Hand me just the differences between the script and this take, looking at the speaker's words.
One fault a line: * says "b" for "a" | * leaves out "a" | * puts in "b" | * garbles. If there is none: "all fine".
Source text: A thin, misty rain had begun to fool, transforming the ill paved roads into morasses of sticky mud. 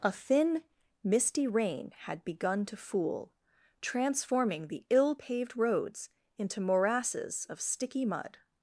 all fine